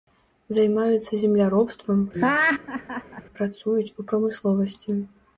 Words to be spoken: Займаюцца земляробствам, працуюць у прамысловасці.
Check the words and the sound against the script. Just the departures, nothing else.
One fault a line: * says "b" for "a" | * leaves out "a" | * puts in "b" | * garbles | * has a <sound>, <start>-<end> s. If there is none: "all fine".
* has a laugh, 2.1-3.2 s